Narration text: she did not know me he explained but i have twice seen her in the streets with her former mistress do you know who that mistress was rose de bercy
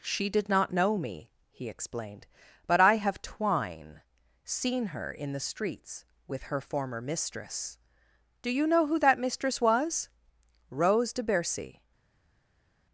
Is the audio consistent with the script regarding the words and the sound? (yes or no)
no